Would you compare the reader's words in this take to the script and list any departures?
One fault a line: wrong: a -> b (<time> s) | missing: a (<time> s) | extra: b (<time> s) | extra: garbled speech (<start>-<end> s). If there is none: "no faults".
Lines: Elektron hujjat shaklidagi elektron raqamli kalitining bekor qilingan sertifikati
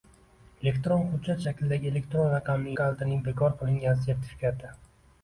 no faults